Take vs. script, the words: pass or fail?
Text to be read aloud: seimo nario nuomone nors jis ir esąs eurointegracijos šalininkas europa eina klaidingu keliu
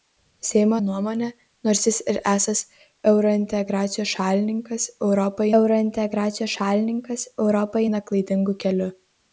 fail